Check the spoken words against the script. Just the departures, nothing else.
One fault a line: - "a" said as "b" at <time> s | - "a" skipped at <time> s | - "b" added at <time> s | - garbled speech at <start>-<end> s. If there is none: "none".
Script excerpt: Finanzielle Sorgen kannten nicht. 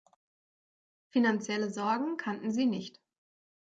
- "sie" added at 2.5 s